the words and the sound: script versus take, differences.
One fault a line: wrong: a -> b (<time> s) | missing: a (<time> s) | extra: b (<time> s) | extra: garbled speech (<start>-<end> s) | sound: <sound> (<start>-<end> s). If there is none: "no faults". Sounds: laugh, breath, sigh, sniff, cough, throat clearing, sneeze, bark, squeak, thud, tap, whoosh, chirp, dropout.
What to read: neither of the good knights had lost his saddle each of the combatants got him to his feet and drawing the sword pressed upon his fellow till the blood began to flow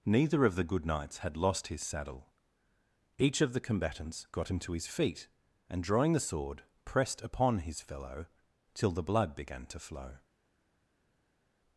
no faults